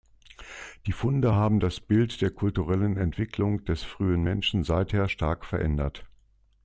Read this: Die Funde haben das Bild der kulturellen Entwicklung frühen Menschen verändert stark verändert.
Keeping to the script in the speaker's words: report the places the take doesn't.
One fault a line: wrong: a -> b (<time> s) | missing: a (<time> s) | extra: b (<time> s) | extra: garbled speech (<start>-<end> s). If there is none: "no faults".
extra: des (3.7 s)
wrong: verändert -> seither (4.6 s)